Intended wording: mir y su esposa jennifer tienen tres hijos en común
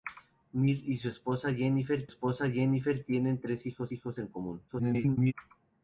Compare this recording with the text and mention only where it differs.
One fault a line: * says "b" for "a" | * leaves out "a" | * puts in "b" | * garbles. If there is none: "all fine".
* puts in "esposa jennifer"
* puts in "hijos"
* garbles